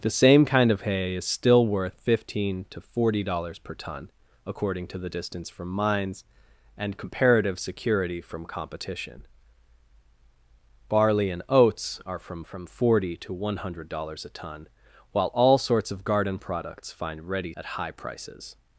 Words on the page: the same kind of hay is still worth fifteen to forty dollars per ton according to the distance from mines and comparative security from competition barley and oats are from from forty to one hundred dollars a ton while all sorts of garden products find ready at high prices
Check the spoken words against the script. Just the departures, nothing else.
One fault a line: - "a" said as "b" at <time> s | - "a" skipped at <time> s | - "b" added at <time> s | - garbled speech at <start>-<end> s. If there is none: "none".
none